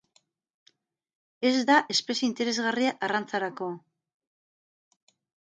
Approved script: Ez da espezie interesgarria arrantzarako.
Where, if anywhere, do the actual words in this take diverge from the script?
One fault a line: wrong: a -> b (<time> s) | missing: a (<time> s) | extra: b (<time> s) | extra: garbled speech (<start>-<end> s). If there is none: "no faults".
no faults